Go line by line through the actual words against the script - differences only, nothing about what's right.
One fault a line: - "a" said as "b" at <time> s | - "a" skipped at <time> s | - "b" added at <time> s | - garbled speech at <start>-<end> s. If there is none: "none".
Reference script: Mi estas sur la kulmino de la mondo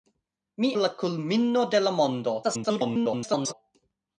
- "estas sur" skipped at 0.7 s
- garbled speech at 2.4-3.5 s